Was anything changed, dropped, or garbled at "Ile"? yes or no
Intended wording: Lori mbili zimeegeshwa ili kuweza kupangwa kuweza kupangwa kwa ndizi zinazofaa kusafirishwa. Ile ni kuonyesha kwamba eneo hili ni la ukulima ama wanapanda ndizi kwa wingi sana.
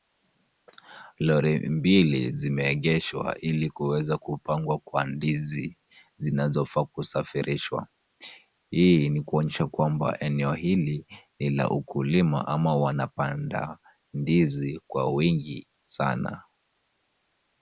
yes